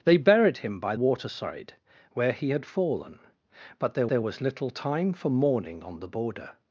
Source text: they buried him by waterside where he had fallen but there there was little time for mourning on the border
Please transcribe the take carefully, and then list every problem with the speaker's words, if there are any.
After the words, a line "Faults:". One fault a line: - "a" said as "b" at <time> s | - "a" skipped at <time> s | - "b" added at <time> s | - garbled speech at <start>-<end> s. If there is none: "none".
they buried him by waterside where he had fallen but there there was little time for mourning on the border
Faults:
none